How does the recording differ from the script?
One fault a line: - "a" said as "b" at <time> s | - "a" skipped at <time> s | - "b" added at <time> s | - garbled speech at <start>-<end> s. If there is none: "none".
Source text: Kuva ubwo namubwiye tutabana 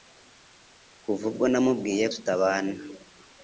none